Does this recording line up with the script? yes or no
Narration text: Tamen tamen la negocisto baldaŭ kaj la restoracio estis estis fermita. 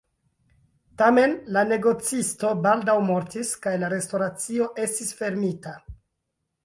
no